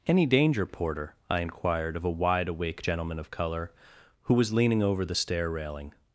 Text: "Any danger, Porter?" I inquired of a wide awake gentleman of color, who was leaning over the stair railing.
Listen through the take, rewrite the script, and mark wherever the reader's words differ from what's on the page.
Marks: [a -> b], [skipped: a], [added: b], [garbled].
"Any danger, Porter?" I inquired of a wide awake gentleman of color, who was leaning over the stair railing.